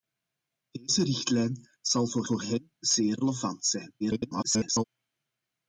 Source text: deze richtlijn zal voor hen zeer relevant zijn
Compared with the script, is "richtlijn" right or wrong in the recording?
right